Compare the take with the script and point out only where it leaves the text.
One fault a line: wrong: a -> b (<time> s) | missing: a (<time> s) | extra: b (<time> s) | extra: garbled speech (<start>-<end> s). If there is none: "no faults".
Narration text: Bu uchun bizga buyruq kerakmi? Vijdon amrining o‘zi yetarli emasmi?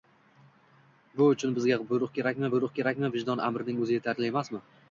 extra: buyruq kerakmi (2.5 s)